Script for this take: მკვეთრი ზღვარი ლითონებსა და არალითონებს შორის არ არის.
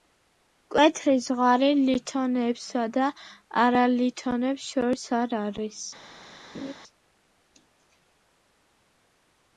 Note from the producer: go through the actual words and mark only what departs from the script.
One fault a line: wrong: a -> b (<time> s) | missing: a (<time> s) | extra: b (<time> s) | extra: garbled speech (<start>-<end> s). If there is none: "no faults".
no faults